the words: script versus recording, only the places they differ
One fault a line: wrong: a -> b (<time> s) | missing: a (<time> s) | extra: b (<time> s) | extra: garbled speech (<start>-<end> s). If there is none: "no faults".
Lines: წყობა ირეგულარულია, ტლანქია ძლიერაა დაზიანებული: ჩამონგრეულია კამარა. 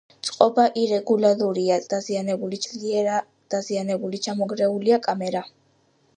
wrong: ტლანქია -> დაზიანებული (1.9 s)